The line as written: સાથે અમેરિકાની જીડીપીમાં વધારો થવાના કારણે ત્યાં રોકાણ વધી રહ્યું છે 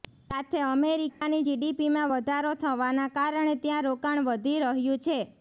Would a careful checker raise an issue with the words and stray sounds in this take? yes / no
yes